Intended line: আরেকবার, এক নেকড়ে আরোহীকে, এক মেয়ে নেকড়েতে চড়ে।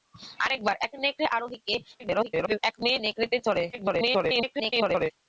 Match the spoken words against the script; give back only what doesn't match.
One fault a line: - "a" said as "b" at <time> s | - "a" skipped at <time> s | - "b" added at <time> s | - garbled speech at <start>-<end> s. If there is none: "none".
- garbled speech at 2.0-2.6 s
- garbled speech at 3.7-5.1 s